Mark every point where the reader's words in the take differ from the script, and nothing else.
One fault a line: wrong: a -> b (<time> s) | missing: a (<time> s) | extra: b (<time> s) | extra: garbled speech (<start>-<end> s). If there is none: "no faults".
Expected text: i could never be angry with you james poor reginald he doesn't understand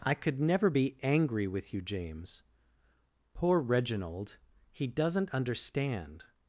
no faults